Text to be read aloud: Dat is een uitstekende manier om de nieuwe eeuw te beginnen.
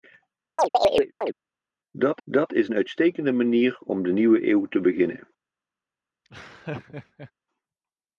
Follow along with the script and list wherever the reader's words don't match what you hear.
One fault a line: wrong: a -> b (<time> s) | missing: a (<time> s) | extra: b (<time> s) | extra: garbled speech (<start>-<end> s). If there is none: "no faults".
extra: dat (2.2 s)